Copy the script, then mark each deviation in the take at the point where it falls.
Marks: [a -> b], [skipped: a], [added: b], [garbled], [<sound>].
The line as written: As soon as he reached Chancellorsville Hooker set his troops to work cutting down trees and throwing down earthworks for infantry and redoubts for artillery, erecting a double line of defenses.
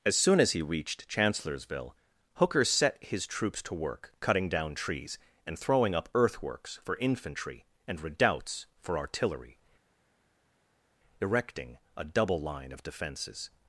As soon as he reached Chancellorsville Hooker set his troops to work cutting down trees and throwing [down -> up] earthworks for infantry and redoubts for artillery, erecting a double line of defenses.